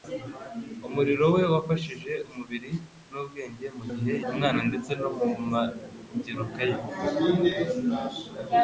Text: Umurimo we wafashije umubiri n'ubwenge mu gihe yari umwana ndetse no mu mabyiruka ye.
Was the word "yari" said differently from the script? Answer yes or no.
yes